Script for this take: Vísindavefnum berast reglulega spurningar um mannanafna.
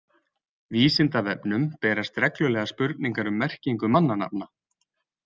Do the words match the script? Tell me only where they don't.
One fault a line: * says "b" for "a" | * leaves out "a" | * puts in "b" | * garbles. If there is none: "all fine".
* puts in "merkingu"